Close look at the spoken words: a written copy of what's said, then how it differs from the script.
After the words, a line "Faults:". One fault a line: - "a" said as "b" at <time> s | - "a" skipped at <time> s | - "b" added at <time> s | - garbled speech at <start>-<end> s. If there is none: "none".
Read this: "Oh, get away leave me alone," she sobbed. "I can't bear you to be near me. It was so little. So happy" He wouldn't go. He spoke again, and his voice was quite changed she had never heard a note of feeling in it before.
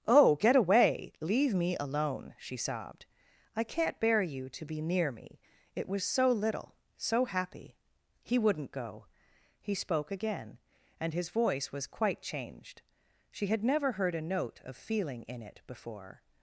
"Oh, get away leave me alone," she sobbed. "I can't bear you to be near me. It was so little. So happy" He wouldn't go. He spoke again, and his voice was quite changed she had never heard a note of feeling in it before.
Faults:
none